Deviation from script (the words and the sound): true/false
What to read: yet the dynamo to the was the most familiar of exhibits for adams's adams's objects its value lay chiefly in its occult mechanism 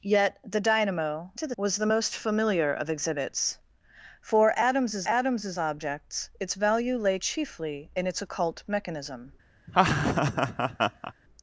true